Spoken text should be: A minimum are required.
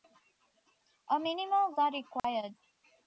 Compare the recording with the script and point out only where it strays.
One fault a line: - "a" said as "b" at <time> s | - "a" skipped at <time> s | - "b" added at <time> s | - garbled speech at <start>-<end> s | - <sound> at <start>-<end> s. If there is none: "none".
- dropout at 2.2-2.2 s